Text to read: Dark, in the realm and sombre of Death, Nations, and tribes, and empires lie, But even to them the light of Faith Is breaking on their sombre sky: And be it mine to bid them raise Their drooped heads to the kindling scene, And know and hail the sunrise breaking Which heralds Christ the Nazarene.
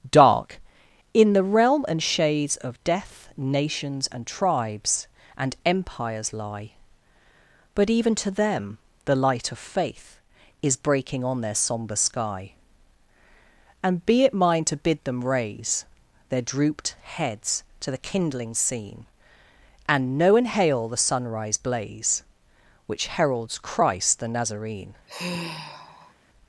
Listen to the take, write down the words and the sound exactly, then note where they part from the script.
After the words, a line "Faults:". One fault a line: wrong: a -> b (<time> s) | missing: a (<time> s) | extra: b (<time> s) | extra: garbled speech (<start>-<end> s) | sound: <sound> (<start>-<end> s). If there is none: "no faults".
Dark, in the realm and shades of Death, Nations, and tribes, and empires lie, But even to them the light of Faith Is breaking on their sombre sky: And be it mine to bid them raise Their drooped heads to the kindling scene, And know and hail the sunrise blaze Which heralds Christ the Nazarene.
Faults:
wrong: sombre -> shades (2.0 s)
wrong: breaking -> blaze (21.6 s)
sound: sigh (25.1-26.1 s)